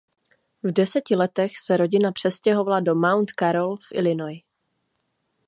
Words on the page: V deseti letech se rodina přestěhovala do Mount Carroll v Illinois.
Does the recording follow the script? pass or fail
pass